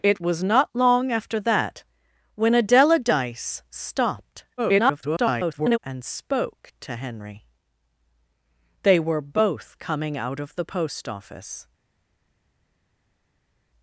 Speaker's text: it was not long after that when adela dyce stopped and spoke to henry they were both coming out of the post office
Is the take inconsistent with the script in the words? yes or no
yes